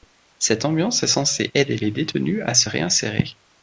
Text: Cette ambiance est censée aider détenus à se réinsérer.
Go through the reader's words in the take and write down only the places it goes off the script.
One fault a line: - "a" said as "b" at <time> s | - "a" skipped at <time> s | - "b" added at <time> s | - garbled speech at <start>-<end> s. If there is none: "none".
- "les" added at 1.8 s